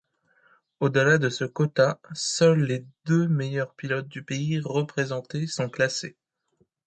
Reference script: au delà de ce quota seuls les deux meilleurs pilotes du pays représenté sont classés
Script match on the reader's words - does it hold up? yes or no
yes